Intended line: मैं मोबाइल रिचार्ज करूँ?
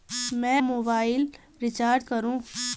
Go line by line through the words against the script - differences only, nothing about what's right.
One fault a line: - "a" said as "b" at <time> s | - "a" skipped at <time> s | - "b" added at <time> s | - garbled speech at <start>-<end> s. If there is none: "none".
none